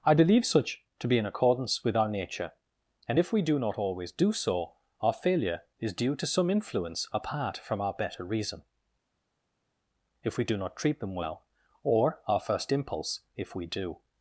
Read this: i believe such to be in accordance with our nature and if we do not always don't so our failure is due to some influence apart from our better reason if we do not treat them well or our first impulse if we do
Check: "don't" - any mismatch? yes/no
yes